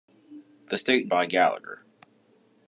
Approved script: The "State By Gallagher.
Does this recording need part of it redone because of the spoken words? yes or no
no